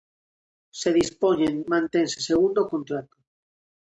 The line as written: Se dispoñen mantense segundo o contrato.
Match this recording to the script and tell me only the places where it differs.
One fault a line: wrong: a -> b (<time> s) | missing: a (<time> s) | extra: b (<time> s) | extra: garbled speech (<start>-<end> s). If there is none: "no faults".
no faults